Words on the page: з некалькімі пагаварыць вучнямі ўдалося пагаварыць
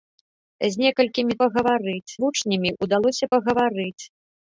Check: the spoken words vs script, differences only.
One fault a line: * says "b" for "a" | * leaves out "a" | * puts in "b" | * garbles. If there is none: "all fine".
all fine